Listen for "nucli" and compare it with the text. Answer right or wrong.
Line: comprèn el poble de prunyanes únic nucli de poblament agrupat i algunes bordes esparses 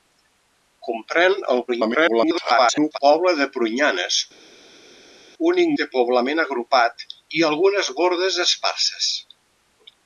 wrong